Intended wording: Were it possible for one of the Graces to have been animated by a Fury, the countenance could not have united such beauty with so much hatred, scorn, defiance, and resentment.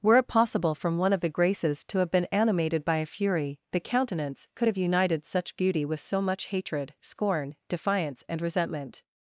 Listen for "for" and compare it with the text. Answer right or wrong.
wrong